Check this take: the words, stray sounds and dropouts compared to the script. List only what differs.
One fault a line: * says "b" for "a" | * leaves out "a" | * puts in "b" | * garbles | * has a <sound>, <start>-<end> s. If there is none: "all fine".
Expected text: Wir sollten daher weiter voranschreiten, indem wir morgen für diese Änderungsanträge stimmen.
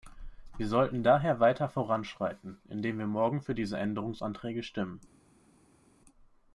all fine